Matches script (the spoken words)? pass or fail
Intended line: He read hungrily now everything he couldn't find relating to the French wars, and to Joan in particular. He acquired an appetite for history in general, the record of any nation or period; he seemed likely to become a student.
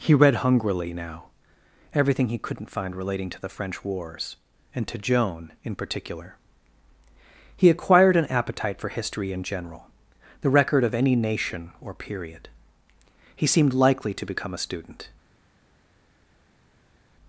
pass